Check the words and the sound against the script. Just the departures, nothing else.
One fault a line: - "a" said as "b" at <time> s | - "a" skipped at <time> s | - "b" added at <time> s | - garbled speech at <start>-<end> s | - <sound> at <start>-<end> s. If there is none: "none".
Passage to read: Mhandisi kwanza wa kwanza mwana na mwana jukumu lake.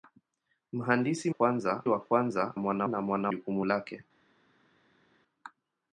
none